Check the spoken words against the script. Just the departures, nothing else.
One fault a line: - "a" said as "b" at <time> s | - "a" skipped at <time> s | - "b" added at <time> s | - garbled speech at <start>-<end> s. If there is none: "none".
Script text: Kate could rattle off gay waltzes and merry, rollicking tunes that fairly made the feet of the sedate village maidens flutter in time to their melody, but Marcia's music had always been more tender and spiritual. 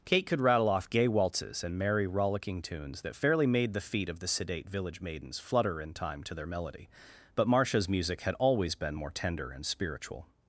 none